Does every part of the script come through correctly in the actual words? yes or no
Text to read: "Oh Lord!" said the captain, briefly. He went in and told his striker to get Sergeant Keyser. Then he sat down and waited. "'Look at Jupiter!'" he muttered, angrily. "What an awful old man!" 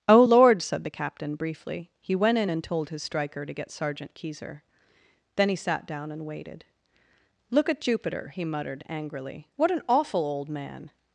yes